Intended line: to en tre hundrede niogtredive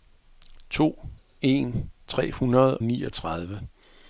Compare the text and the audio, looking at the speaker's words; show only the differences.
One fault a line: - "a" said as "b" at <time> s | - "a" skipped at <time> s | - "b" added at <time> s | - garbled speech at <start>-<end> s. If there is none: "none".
none